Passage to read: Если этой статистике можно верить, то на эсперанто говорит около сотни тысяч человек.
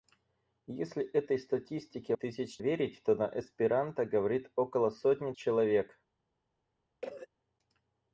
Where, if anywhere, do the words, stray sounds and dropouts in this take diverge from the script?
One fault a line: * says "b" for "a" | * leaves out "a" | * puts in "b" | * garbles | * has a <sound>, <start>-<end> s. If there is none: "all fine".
* says "тысяч" for "можно"
* leaves out "тысяч"
* has a cough, 7.0-7.3 s